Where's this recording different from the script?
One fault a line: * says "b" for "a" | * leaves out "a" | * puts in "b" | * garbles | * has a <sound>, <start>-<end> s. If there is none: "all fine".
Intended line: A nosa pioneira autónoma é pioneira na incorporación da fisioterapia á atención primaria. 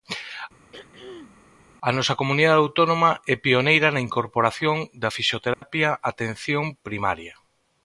* has a throat clearing, 0.7-1.4 s
* says "comunidade" for "pioneira"
* has a dropout, 5.5-5.6 s